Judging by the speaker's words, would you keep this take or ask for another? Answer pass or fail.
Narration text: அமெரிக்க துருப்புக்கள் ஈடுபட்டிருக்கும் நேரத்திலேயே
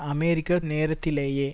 fail